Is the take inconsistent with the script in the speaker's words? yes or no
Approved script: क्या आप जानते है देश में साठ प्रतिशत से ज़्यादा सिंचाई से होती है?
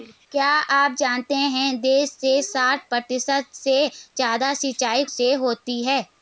no